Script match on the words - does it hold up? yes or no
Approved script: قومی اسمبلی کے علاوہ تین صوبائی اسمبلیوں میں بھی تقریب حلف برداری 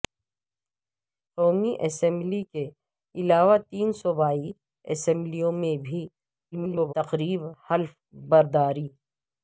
no